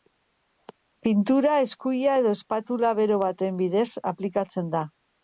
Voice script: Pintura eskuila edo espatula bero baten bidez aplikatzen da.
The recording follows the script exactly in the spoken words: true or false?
true